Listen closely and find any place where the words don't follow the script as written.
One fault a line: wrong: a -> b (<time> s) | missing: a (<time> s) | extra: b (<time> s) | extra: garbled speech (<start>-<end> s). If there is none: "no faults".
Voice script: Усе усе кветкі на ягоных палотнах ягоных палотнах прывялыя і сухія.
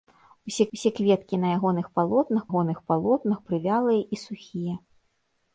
no faults